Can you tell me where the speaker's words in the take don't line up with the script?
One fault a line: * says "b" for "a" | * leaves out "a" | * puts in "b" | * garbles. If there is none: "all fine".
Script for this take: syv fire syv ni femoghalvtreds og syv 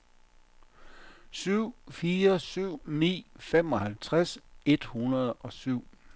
* puts in "et hundrede"